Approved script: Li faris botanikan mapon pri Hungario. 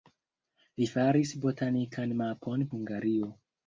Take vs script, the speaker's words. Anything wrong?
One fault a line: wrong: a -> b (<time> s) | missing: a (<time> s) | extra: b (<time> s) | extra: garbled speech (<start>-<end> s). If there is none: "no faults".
missing: pri (2.6 s)